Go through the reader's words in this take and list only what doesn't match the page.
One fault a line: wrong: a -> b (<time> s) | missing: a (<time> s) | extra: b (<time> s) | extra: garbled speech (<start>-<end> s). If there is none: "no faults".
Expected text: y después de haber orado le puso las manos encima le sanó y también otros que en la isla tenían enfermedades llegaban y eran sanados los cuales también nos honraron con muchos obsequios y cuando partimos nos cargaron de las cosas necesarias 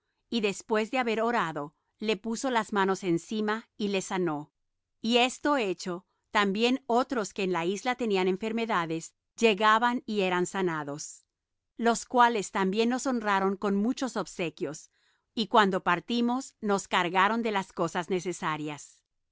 extra: y (3.8 s)
extra: esto hecho (5.2 s)